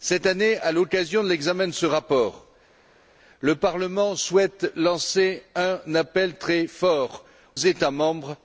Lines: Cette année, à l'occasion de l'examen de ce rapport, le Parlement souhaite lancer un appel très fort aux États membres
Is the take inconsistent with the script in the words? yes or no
yes